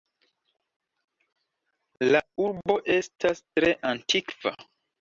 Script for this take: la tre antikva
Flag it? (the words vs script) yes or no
yes